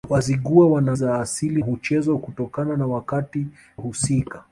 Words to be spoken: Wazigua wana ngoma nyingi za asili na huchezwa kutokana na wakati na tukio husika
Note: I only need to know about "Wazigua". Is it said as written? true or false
true